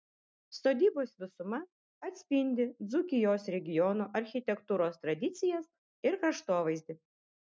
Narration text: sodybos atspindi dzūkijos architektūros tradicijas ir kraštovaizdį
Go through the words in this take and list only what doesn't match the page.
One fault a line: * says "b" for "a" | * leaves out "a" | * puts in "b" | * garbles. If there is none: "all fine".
* puts in "visuma"
* puts in "regiono"